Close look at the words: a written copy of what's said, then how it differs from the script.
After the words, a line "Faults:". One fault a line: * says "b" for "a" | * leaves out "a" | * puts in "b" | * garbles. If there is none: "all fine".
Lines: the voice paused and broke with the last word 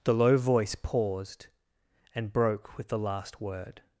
the low voice paused and broke with the last word
Faults:
* puts in "low"